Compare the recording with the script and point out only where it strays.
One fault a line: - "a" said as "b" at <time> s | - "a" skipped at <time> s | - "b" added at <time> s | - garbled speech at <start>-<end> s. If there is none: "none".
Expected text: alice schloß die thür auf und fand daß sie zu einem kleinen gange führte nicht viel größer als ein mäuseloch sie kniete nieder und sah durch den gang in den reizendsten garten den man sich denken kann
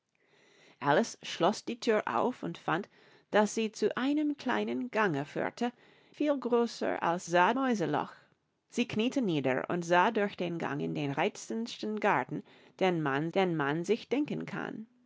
- "nicht" skipped at 5.7 s
- "ein" said as "sah" at 7.3 s
- "den man" added at 13.3 s